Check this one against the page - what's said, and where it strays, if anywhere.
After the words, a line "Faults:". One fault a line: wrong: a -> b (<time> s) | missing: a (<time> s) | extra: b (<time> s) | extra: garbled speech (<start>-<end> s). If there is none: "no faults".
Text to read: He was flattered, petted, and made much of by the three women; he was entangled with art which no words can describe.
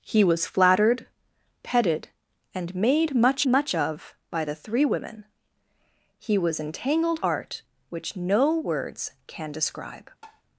He was flattered, petted, and made much much of by the three women; he was entangled art which no words can describe.
Faults:
extra: much (3.5 s)
missing: with (7.2 s)